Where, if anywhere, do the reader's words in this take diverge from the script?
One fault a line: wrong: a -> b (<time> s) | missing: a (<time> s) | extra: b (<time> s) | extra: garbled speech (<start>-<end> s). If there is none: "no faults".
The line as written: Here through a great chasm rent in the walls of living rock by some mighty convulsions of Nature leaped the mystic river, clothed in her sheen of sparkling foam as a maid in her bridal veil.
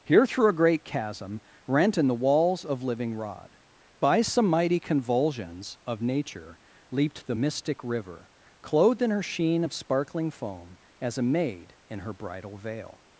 wrong: rock -> rod (3.1 s)